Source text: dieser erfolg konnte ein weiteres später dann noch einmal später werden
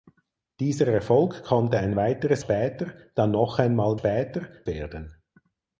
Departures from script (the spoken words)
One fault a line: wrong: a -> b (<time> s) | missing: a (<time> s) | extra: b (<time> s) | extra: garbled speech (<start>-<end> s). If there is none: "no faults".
no faults